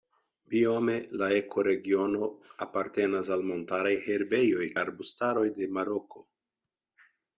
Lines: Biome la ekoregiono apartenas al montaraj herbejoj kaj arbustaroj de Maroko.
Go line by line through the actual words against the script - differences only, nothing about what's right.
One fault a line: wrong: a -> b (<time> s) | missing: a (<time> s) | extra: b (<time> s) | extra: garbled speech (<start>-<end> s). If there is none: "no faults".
missing: kaj (4.7 s)